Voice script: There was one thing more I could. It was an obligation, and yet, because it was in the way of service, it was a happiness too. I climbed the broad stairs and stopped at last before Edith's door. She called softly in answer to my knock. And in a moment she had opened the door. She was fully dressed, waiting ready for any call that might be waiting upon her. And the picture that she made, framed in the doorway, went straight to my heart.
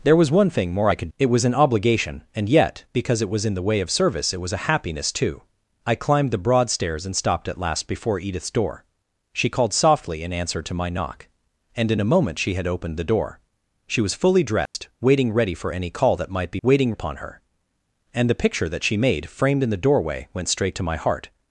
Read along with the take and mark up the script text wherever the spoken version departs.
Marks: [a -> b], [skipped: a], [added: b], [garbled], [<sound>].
There was one thing more I could. It was an obligation, and yet, because it was in the way of service, it was a happiness too. I climbed the broad stairs and stopped at last before Edith's door. She called softly in answer to my knock. And in a moment she had opened the door. She was fully dressed, [dropout] waiting ready for any call that might be waiting upon her. And the picture that she made, framed in the doorway, went straight to my heart.